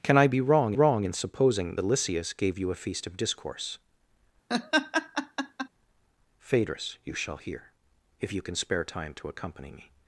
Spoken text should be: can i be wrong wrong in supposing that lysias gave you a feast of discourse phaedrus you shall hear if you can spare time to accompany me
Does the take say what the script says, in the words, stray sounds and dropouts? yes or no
no